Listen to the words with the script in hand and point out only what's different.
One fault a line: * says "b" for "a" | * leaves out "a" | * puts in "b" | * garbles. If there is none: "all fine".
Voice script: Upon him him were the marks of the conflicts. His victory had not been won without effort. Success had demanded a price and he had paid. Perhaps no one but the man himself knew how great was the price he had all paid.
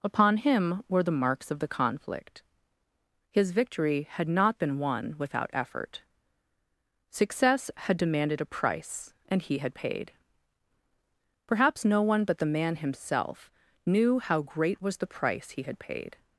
* leaves out "him"
* says "conflict" for "conflicts"
* leaves out "all"